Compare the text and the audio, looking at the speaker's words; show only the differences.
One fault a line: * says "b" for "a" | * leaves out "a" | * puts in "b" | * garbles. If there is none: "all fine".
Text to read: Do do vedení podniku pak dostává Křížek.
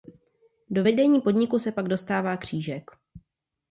* leaves out "do"
* puts in "se"